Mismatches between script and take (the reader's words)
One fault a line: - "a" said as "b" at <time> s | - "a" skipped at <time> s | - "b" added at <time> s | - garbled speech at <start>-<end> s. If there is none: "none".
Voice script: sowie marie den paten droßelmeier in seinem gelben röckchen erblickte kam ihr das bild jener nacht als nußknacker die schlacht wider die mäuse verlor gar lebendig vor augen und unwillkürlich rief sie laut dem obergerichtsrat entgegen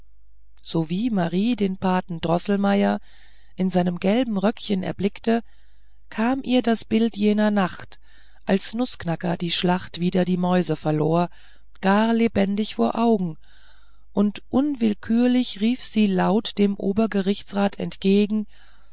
none